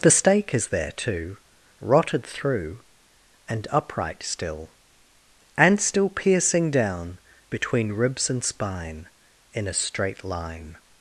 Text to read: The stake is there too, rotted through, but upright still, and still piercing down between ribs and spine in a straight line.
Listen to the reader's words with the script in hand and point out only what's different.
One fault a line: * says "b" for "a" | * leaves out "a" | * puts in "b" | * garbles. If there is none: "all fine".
* says "and" for "but"